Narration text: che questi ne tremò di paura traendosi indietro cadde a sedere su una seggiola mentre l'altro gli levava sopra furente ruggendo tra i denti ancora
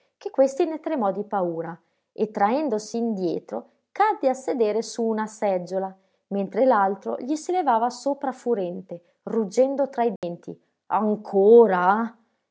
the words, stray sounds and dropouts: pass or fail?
fail